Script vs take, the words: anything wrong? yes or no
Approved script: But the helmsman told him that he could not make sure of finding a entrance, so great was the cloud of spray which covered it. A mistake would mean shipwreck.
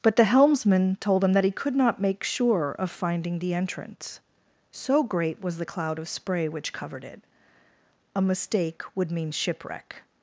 yes